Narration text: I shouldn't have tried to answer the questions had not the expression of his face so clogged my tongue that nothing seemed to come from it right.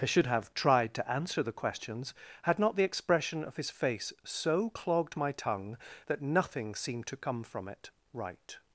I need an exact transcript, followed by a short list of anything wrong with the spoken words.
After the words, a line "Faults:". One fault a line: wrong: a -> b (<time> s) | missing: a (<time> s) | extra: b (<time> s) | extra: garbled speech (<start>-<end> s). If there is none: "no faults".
I should have tried to answer the questions had not the expression of his face so clogged my tongue that nothing seemed to come from it right.
Faults:
wrong: shouldn't -> should (0.1 s)